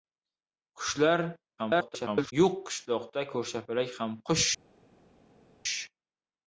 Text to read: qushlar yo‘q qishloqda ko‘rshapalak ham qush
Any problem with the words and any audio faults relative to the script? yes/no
yes